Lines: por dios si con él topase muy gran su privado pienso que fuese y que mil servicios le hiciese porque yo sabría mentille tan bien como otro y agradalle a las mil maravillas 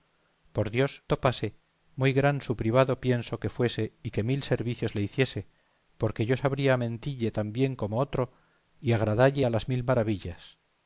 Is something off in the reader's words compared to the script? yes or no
yes